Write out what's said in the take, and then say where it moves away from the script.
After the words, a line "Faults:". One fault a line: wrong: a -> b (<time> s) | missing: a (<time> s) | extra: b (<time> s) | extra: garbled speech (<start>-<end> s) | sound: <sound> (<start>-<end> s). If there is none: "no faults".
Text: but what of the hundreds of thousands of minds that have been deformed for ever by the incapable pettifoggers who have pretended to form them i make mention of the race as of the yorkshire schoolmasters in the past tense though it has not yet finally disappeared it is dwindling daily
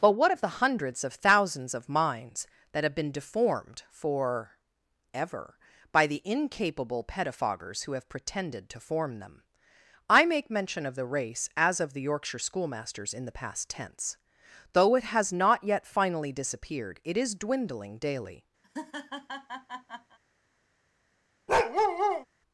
but what of the hundreds of thousands of minds that have been deformed for ever by the incapable pettifoggers who have pretended to form them i make mention of the race as of the yorkshire schoolmasters in the past tense though it has not yet finally disappeared it is dwindling daily
Faults:
sound: laugh (18.6-20.2 s)
sound: bark (21.5-22.3 s)